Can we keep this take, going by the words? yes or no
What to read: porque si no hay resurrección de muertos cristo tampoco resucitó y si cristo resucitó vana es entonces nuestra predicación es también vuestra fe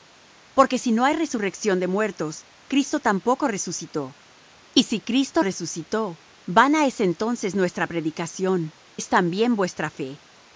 yes